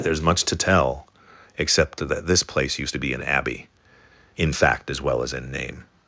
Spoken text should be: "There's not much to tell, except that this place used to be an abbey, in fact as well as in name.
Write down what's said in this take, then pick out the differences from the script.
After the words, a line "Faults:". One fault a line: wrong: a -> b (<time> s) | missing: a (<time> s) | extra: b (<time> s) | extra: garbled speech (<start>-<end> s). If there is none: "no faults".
"There's much to tell, except that this place used to be an abbey, in fact as well as in name.
Faults:
missing: not (0.2 s)